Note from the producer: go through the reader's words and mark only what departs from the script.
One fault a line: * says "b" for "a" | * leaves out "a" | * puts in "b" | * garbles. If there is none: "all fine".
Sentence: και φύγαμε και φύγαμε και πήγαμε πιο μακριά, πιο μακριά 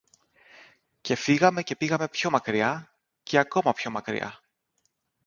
* leaves out "φύγαμε και"
* puts in "και ακόμα"